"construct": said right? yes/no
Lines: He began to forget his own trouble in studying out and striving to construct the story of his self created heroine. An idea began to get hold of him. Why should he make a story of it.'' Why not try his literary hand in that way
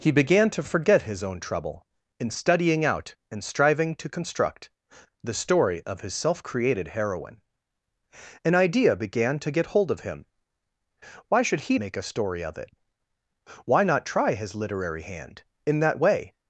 yes